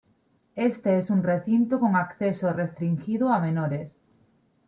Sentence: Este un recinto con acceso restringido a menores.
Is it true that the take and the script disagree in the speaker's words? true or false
true